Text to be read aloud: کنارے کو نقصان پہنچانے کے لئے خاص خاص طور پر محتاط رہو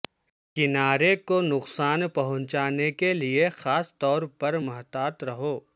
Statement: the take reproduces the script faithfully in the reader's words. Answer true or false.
false